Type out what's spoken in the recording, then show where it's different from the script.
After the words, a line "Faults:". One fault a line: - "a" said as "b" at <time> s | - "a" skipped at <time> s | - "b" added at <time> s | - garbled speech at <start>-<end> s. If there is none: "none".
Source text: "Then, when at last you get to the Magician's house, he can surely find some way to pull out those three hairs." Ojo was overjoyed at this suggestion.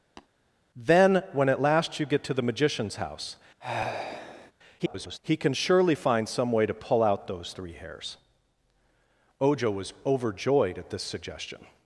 "Then, when at last you get to the Magician's house, [garbled] he can surely find some way to pull out those three hairs." Ojo was overjoyed at this suggestion.
Faults:
- garbled speech at 4.8-5.2 s